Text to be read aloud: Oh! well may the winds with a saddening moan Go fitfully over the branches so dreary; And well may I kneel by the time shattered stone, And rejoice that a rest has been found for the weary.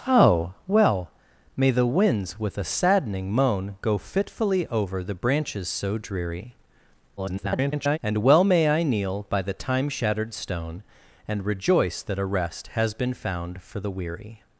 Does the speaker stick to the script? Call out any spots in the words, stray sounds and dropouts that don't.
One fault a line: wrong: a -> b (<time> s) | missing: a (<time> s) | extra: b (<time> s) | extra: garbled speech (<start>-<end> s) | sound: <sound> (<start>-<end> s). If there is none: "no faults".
extra: garbled speech (7.2-8.0 s)